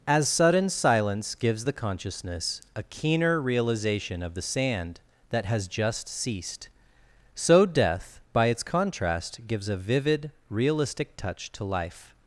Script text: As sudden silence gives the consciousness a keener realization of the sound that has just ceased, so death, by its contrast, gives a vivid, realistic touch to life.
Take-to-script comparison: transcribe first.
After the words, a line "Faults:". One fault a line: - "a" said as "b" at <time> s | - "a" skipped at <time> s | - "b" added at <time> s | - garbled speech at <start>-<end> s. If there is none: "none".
As sudden silence gives the consciousness a keener realization of the sand that has just ceased, so death, by its contrast, gives a vivid, realistic touch to life.
Faults:
- "sound" said as "sand" at 4.4 s